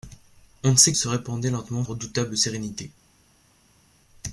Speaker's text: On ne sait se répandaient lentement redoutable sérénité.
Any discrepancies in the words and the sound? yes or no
no